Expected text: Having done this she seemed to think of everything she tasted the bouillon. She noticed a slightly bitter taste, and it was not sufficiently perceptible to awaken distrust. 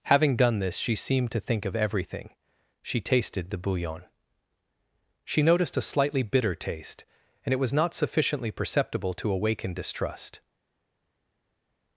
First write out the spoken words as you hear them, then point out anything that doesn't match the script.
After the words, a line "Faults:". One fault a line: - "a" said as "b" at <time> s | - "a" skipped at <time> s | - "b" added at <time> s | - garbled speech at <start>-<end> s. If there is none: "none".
Having done this she seemed to think of everything she tasted the bouillon. She noticed a slightly bitter taste, and it was not sufficiently perceptible to awaken distrust.
Faults:
none